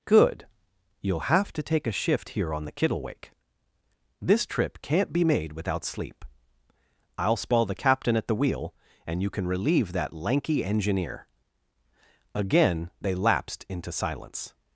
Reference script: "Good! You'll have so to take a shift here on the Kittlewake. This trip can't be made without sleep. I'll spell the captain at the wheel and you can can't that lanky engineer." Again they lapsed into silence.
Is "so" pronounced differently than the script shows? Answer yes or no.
yes